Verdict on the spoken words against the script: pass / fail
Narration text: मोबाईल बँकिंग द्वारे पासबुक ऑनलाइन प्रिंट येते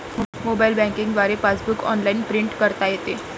fail